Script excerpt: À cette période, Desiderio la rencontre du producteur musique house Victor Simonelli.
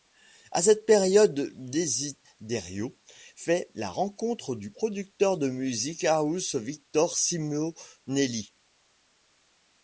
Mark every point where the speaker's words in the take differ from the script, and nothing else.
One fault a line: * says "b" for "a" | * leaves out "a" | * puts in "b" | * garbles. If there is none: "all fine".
* puts in "fait"
* puts in "de"